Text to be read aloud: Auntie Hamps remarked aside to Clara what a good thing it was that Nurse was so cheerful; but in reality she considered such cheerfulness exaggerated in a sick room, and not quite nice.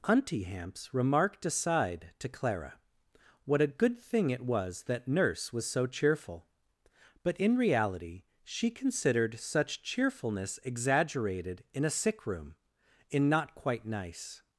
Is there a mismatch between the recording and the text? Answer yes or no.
yes